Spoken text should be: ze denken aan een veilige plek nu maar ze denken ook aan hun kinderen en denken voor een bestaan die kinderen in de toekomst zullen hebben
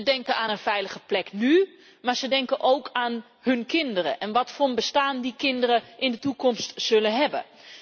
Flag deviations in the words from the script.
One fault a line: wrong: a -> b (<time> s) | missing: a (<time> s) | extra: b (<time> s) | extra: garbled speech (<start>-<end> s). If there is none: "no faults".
wrong: denken -> wat (4.3 s)